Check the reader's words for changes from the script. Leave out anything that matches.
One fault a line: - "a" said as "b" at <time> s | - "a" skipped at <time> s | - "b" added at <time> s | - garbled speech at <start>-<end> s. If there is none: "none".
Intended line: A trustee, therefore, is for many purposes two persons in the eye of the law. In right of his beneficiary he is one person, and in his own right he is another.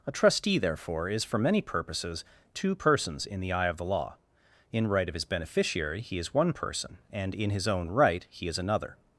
none